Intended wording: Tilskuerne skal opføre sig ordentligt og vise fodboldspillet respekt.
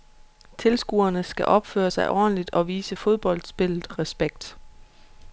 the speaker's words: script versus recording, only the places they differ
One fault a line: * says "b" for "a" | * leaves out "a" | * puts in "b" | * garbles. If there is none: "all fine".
all fine